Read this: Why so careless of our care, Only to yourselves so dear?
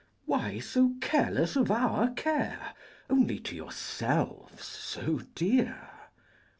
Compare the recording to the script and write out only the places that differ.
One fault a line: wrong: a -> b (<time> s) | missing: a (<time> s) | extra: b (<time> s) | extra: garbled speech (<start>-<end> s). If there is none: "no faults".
no faults